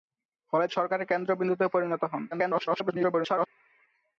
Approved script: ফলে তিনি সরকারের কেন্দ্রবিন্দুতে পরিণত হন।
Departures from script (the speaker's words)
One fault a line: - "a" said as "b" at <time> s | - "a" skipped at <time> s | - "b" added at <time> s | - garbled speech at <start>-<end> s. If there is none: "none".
- "তিনি" skipped at 0.7 s
- garbled speech at 2.3-3.5 s